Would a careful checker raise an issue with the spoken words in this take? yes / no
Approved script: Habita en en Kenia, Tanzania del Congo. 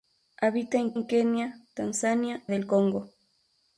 no